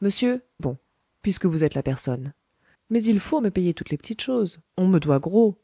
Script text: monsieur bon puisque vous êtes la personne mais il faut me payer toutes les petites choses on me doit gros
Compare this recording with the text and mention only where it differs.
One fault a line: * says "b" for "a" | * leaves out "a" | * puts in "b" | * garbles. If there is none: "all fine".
all fine